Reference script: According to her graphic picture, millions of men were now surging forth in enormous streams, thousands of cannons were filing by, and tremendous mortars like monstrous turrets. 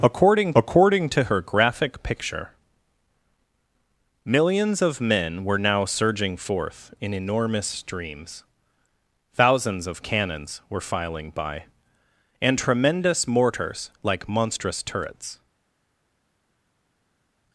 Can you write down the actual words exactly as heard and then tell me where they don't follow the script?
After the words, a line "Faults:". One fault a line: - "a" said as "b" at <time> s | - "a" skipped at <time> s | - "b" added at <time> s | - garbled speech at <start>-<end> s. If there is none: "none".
According according to her graphic picture, millions of men were now surging forth in enormous streams, thousands of cannons were filing by, and tremendous mortars like monstrous turrets.
Faults:
- "according" added at 0.6 s